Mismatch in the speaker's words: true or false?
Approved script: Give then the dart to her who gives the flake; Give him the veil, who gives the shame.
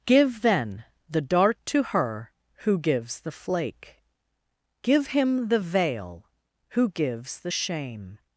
false